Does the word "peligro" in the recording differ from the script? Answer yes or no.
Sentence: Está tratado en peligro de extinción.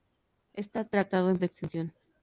yes